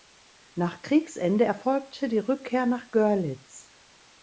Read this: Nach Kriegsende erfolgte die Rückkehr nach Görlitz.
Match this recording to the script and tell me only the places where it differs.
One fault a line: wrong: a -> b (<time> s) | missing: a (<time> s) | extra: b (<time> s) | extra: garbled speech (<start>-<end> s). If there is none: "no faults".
no faults